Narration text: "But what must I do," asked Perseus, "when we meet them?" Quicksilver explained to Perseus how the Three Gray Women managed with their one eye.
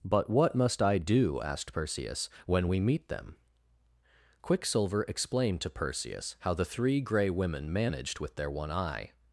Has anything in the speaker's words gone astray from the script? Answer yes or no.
no